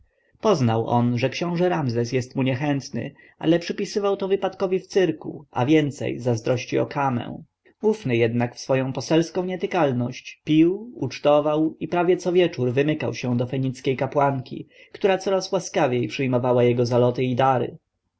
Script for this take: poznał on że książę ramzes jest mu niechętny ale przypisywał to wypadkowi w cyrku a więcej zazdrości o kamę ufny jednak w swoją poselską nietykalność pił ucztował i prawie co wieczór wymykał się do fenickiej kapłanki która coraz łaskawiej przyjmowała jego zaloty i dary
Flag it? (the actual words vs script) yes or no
no